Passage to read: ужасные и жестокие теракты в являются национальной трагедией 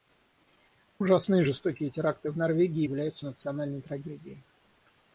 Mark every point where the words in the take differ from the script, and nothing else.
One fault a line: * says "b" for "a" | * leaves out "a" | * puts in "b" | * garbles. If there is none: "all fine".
* puts in "норвегии"